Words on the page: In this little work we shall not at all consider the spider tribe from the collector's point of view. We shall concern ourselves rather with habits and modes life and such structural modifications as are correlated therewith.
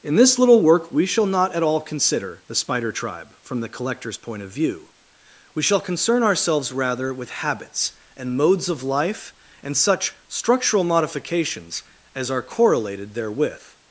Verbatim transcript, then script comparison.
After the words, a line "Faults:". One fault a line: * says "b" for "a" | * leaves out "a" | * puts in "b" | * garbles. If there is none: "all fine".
In this little work we shall not at all consider the spider tribe from the collector's point of view. We shall concern ourselves rather with habits and modes of life and such structural modifications as are correlated therewith.
Faults:
* puts in "of"